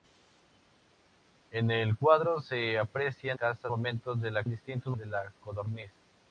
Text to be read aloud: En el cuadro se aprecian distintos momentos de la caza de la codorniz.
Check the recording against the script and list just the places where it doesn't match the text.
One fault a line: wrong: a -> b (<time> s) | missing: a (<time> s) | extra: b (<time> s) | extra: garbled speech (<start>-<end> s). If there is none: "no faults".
wrong: distintos -> caza (3.3 s)
wrong: caza -> distintos (4.5 s)